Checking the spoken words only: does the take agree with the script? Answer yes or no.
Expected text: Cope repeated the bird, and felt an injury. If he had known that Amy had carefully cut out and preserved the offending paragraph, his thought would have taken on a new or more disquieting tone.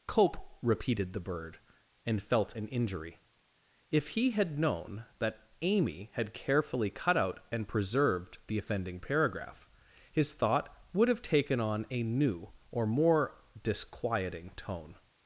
yes